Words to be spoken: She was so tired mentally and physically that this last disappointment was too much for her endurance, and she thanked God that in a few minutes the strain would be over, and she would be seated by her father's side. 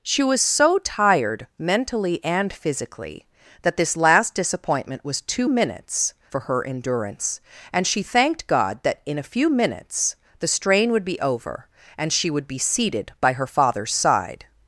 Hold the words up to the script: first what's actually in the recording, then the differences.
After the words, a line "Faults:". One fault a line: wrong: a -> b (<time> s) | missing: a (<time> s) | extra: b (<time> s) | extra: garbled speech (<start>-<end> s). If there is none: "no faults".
She was so tired mentally and physically that this last disappointment was too minutes for her endurance, and she thanked God that in a few minutes the strain would be over, and she would be seated by her father's side.
Faults:
wrong: much -> minutes (5.5 s)